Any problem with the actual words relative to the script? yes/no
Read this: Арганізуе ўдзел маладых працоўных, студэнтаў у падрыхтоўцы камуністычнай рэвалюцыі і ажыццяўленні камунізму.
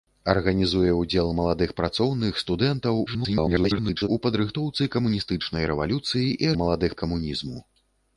yes